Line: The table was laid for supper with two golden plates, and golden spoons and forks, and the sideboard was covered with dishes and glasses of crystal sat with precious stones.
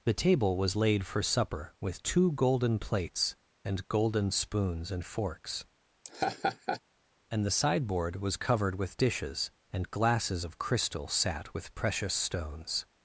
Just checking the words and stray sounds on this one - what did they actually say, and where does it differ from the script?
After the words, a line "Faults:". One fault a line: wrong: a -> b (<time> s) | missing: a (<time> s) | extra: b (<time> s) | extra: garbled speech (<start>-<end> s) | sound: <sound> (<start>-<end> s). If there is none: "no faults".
The table was laid for supper with two golden plates, and golden spoons and forks, and the sideboard was covered with dishes and glasses of crystal sat with precious stones.
Faults:
sound: laugh (6.0-6.8 s)